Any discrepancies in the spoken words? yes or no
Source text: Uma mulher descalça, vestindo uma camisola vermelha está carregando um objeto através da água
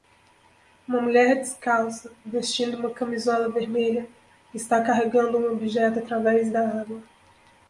no